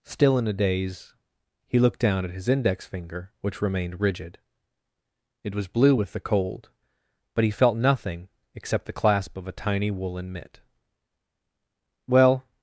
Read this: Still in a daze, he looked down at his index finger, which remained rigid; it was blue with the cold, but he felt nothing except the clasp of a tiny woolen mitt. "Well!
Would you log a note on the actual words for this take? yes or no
no